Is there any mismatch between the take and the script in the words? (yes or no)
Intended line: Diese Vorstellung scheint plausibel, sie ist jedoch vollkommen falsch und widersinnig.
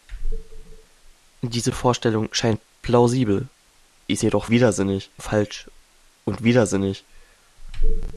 yes